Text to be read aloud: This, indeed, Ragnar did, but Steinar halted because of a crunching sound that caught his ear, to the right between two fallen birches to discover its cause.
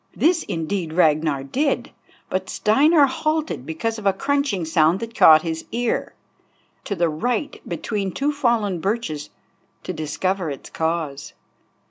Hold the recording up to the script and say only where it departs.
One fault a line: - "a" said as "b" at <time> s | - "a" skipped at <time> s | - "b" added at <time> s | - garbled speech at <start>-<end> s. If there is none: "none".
none